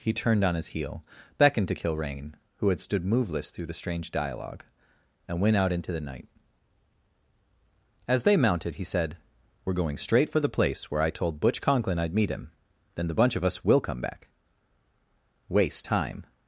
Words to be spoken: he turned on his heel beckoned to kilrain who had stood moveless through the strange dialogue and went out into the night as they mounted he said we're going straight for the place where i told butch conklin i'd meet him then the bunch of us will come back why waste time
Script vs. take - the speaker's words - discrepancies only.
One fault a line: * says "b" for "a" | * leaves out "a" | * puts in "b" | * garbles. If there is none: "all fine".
* leaves out "why"